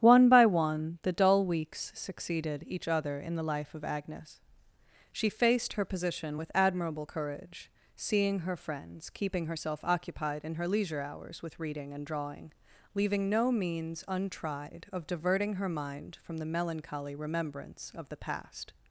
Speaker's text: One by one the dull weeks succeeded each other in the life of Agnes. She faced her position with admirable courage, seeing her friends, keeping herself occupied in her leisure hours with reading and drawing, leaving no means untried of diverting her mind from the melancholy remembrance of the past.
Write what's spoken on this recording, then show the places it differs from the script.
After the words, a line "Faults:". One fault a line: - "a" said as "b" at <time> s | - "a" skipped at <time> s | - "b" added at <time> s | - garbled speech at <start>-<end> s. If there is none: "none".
One by one the dull weeks succeeded each other in the life of Agnes. She faced her position with admirable courage, seeing her friends, keeping herself occupied in her leisure hours with reading and drawing, leaving no means untried of diverting her mind from the melancholy remembrance of the past.
Faults:
none